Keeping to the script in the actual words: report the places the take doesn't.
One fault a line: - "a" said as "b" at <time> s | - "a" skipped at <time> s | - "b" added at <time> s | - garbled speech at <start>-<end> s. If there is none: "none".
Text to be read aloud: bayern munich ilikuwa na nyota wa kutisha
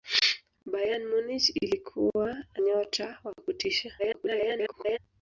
- "na" skipped at 2.4 s
- garbled speech at 4.0-5.0 s